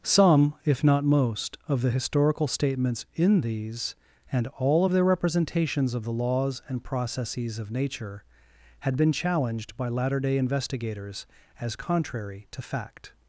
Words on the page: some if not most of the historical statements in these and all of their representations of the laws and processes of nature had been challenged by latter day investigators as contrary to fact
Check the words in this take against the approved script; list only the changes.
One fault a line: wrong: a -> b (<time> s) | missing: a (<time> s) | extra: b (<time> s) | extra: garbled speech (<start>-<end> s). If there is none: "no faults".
no faults